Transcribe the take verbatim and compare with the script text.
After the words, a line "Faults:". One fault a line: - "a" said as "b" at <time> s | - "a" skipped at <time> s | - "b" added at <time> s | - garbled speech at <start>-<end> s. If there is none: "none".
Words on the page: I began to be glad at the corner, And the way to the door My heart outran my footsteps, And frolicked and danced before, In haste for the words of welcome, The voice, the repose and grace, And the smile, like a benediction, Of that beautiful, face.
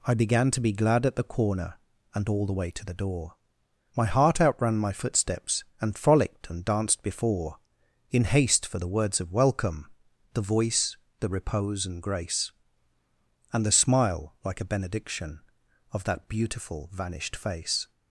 I began to be glad at the corner, And all the way to the door My heart outran my footsteps, And frolicked and danced before, In haste for the words of welcome, The voice, the repose and grace, And the smile, like a benediction, Of that beautiful, vanished face.
Faults:
- "all" added at 2.3 s
- "vanished" added at 16.9 s